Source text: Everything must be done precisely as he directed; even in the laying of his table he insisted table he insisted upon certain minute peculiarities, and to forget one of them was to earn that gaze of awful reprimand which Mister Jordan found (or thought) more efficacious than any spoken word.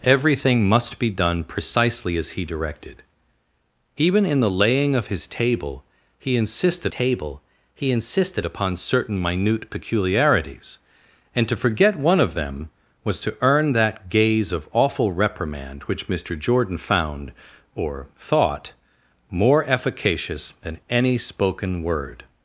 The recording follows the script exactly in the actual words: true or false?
true